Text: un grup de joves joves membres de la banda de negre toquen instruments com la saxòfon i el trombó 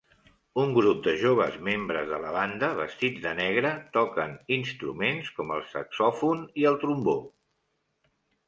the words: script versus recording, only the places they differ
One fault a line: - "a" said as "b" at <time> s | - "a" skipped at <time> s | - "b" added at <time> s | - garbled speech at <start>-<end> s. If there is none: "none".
- "joves" skipped at 1.6 s
- "vestits" added at 2.8 s
- "la" said as "el" at 5.6 s